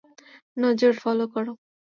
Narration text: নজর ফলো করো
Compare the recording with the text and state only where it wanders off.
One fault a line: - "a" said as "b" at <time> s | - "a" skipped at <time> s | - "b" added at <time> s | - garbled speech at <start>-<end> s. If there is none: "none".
none